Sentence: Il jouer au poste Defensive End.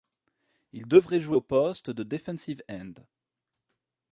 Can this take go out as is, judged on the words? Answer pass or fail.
fail